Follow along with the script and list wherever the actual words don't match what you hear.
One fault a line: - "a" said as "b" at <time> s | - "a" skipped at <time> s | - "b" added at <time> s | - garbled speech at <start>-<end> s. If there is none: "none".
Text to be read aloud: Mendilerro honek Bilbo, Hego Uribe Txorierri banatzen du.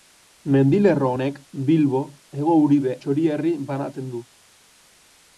none